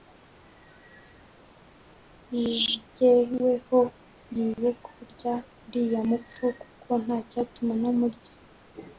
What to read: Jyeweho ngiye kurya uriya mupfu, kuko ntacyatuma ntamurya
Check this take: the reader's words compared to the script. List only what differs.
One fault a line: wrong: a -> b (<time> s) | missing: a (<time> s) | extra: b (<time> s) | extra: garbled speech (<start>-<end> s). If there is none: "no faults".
no faults